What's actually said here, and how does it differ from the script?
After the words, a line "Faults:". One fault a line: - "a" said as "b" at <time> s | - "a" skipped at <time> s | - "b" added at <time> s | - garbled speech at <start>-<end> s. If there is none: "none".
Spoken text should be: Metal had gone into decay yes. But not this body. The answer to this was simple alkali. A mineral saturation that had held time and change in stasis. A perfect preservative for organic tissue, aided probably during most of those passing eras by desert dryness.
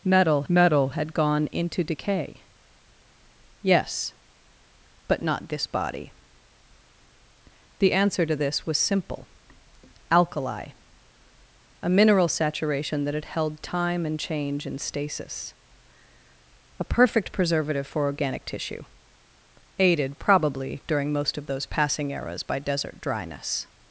Metal metal had gone into decay yes. But not this body. The answer to this was simple alkali. A mineral saturation that had held time and change in stasis. A perfect preservative for organic tissue, aided probably during most of those passing eras by desert dryness.
Faults:
- "metal" added at 0.5 s